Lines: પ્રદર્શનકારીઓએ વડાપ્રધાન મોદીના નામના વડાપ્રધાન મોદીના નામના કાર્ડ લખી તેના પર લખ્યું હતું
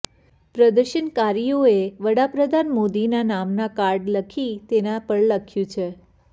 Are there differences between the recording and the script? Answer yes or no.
yes